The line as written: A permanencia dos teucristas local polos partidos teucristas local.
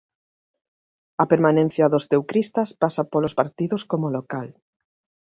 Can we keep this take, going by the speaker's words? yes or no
no